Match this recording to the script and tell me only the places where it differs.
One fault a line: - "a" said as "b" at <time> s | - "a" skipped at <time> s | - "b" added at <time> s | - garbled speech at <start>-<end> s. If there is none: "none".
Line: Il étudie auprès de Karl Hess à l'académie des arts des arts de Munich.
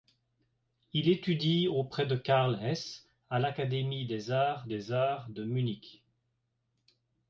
none